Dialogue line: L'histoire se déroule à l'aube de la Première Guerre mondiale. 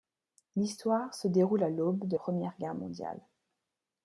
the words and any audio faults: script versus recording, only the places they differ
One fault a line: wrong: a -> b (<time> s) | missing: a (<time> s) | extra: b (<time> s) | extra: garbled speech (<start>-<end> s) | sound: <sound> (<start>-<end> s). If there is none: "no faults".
missing: la (2.2 s)